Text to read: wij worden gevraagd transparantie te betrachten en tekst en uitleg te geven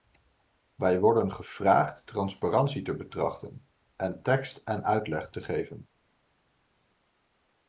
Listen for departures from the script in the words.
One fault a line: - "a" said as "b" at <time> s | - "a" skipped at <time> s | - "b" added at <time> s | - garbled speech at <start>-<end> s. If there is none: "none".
none